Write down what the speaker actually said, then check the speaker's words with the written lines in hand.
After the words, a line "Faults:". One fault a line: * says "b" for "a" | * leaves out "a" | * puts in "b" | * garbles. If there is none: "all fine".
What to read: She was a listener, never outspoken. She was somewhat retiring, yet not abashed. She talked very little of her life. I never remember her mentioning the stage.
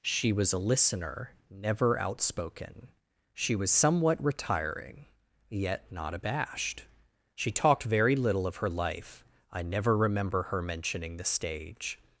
She was a listener, never outspoken. She was somewhat retiring, yet not abashed. She talked very little of her life. I never remember her mentioning the stage.
Faults:
all fine